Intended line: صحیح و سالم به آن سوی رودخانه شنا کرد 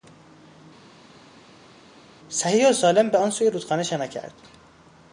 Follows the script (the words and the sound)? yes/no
yes